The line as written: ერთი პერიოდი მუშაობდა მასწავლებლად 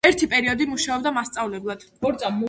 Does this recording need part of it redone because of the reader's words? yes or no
no